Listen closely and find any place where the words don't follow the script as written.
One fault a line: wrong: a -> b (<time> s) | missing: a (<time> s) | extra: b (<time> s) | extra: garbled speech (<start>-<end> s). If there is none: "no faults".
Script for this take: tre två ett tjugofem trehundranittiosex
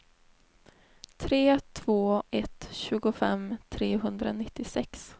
no faults